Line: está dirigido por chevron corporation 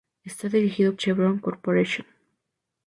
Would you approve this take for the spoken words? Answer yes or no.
no